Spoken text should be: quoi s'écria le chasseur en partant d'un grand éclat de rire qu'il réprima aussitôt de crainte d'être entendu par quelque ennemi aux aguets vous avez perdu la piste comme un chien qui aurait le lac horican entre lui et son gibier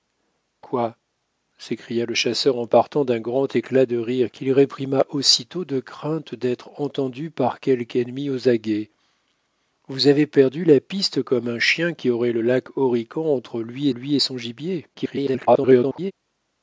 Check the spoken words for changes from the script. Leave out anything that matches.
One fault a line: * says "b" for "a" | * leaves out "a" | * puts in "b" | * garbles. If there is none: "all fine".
* puts in "lui"
* garbles